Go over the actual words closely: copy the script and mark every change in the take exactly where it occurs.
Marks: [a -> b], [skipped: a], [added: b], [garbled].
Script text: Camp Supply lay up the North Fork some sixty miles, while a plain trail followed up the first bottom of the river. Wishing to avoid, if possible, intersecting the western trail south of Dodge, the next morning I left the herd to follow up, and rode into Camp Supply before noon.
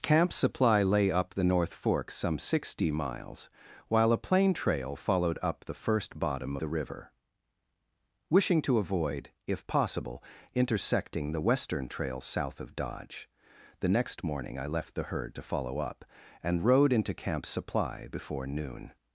Camp Supply lay up the North Fork some sixty miles, while a plain trail followed up the first bottom [skipped: of] the river. Wishing to avoid, if possible, intersecting the western trail south of Dodge, the next morning I left the herd to follow up, and rode into Camp Supply before noon.